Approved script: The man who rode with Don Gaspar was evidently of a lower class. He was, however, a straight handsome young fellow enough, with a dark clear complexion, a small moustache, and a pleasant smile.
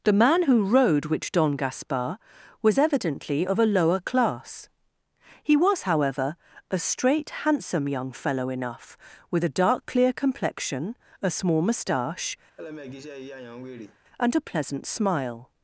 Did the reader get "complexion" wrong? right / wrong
right